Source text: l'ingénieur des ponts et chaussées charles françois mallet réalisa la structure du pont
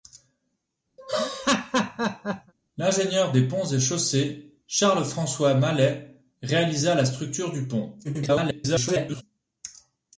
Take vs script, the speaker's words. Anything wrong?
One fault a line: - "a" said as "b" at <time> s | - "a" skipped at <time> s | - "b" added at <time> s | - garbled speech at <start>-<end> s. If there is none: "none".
- garbled speech at 8.0-9.2 s